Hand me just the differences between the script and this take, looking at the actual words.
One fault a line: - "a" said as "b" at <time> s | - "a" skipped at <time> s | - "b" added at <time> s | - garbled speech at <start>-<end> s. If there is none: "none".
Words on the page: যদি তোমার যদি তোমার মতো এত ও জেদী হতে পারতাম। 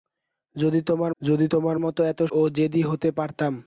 none